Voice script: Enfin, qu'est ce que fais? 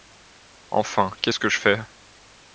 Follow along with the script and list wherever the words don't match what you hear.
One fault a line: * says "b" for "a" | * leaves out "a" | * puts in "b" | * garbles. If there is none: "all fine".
* puts in "je"